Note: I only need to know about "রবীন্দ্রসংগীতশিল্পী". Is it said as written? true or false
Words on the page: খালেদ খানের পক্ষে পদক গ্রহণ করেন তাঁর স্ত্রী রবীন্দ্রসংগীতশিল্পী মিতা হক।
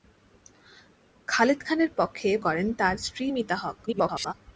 false